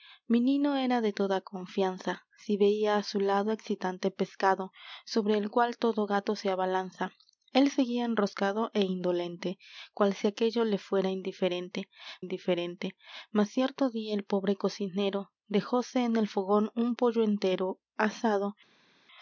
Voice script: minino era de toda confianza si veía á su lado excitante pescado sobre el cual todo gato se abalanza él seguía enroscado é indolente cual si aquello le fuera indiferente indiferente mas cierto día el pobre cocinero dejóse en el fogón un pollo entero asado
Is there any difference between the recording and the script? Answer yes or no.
no